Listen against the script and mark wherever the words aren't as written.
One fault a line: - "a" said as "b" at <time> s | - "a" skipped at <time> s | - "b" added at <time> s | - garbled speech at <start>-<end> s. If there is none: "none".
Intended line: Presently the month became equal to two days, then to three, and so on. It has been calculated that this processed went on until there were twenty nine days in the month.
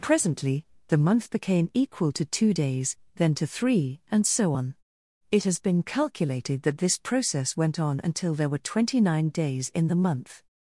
- "processed" said as "process" at 7.0 s